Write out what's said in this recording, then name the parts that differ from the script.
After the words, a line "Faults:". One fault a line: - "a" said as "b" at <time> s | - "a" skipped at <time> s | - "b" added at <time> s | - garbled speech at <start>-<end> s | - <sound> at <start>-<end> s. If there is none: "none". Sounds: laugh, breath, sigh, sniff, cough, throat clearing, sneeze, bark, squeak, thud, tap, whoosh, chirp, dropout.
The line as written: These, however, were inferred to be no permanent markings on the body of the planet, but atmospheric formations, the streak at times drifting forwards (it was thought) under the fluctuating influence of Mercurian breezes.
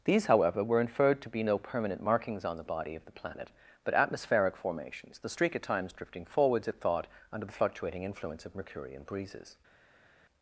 These, however, were inferred to be no permanent markings on the body of the planet, but atmospheric formations, the streak at times drifting forwards (it thought) under the fluctuating influence of Mercurian breezes.
Faults:
- "was" skipped at 6.8 s